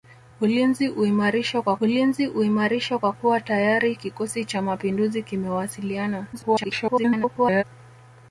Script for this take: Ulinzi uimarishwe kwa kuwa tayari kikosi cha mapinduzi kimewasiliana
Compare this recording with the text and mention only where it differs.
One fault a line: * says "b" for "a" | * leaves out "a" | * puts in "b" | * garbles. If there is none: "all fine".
* puts in "ulinzi uimarishwe kwa"
* garbles